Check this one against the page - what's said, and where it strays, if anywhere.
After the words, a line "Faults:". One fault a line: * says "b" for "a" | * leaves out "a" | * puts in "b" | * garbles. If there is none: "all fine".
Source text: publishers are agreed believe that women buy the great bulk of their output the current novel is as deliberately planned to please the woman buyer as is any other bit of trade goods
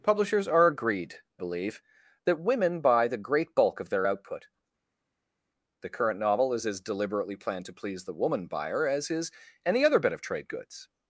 publishers are agreed believe that women buy the great bulk of their output the current novel is as deliberately planned to please the woman buyer as is any other bit of trade goods
Faults:
all fine